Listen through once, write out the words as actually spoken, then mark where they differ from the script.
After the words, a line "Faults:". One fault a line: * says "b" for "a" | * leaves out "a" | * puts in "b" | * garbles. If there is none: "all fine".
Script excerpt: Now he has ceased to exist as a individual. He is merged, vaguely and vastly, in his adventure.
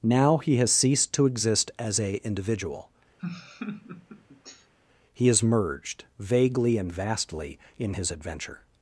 Now he has ceased to exist as a individual. He is merged, vaguely and vastly, in his adventure.
Faults:
all fine